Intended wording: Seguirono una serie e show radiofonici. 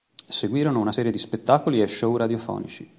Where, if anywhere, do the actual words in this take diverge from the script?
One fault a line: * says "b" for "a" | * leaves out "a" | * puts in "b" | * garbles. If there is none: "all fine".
* puts in "di spettacoli"